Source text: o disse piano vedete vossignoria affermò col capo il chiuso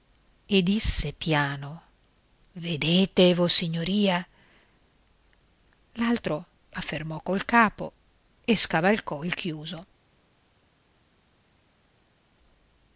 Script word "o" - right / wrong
wrong